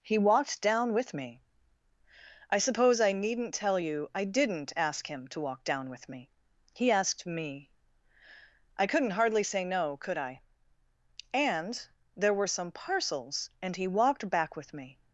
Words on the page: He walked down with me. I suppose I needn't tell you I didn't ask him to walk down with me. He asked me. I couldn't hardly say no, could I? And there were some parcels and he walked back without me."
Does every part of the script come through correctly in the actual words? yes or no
no